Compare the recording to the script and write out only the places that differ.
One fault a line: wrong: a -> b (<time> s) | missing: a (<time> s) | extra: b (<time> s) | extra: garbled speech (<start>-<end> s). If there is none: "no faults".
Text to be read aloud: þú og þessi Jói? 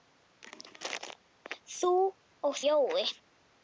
missing: þessi (2.6 s)